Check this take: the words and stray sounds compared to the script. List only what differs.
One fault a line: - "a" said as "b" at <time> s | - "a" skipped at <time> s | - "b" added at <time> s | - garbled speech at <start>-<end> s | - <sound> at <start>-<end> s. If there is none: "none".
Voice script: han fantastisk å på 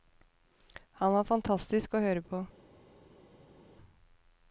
- "var" added at 1.1 s
- "høre" added at 2.0 s